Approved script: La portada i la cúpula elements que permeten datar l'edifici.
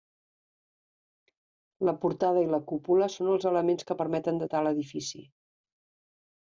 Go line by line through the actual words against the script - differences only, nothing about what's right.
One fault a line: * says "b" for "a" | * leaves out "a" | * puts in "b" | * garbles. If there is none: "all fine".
* puts in "són els"